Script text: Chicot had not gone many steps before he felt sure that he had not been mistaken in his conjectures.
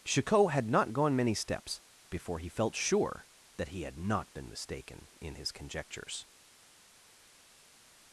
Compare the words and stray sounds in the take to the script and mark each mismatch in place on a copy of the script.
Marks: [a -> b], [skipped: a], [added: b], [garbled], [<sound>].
Chicot had not gone many steps before he felt sure that he had not been mistaken in his conjectures.